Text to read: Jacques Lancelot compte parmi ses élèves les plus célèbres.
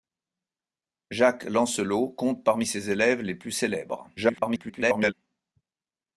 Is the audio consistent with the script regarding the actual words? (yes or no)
no